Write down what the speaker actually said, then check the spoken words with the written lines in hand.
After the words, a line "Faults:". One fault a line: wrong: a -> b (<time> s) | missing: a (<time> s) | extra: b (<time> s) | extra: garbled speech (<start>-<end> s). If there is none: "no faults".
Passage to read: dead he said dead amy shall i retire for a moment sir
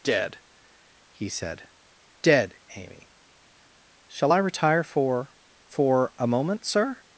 dead he said dead amy shall i retire for for a moment sir
Faults:
extra: for (5.6 s)